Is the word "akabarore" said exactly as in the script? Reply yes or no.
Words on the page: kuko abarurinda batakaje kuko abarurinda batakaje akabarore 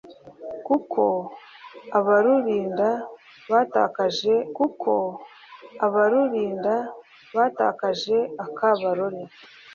yes